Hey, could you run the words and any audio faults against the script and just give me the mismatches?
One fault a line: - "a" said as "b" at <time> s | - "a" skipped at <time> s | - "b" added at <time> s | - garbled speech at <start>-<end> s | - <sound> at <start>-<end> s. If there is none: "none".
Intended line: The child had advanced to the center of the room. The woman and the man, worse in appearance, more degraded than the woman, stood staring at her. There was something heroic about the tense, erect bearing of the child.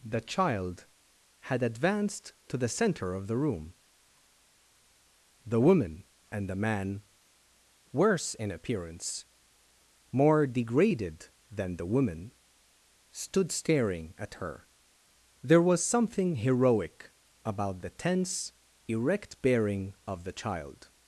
none